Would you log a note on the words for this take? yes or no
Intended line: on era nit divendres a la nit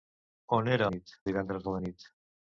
no